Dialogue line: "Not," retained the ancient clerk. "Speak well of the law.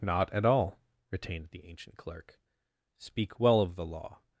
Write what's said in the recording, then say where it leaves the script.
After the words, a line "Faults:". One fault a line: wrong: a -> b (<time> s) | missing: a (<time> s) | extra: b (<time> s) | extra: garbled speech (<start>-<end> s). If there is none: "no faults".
"Not at all," retained the ancient clerk. "Speak well of the law.
Faults:
extra: at all (0.3 s)